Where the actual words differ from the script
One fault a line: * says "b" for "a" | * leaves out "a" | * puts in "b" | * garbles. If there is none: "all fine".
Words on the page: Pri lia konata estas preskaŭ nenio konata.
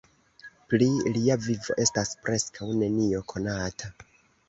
* says "vivo" for "konata"